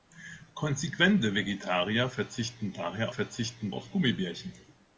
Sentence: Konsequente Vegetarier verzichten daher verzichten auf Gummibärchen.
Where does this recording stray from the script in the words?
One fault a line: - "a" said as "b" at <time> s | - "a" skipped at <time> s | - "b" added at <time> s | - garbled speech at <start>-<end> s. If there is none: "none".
none